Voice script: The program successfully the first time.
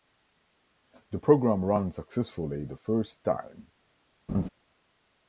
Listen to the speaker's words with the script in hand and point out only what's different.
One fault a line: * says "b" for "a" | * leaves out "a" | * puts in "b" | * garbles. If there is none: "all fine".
* puts in "ran"